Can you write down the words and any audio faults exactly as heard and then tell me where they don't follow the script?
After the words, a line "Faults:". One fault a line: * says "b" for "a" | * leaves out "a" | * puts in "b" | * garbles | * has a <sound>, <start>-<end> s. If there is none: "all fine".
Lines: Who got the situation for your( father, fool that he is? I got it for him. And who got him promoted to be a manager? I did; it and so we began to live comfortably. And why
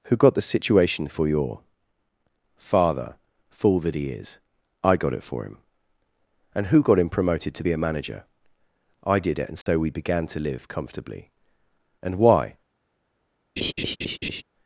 Who got the situation for your( father, fool that he is? I got it for him. And who got him promoted to be a manager? I did; it and so we began to live comfortably. And why
Faults:
* has a dropout, 9.6-9.7 s
* has a laugh, 13.6-14.4 s